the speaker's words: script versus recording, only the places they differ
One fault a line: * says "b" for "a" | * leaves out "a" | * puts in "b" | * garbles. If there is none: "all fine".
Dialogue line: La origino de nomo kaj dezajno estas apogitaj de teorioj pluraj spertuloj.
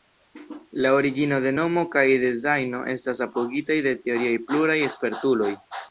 all fine